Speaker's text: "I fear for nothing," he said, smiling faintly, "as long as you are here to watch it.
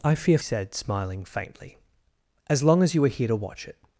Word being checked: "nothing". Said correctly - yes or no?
no